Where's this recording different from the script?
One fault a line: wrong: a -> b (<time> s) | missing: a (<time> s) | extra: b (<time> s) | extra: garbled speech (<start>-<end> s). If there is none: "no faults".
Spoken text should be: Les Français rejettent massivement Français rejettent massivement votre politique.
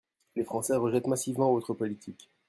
missing: Français rejettent massivement (1.5 s)